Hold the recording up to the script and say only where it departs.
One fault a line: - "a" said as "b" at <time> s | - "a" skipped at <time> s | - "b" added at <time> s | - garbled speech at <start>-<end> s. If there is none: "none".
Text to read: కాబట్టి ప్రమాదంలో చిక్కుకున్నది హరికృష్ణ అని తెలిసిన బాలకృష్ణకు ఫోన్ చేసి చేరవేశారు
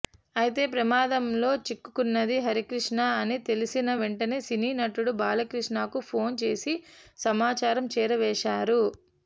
- "కాబట్టి" said as "అయితే" at 0.3 s
- "వెంటనే సినీ నటుడు" added at 4.0 s
- "సమాచారం" added at 7.2 s